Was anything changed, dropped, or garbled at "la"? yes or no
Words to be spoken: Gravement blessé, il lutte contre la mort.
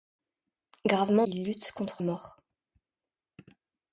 yes